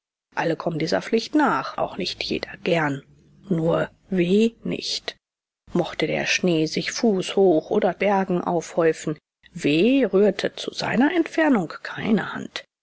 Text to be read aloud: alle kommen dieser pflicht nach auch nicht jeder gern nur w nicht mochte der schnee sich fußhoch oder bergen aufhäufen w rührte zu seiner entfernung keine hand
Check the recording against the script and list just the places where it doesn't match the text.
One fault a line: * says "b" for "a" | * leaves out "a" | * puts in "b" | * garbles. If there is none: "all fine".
all fine